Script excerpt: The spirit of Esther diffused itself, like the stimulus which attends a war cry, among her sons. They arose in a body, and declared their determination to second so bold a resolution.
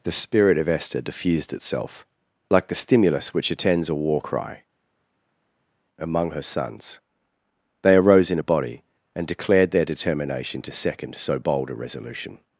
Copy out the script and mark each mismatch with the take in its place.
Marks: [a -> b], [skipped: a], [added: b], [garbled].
The spirit of Esther diffused itself, like the stimulus which attends a war cry, among her sons. They arose in a body, and declared their determination to second so bold a resolution.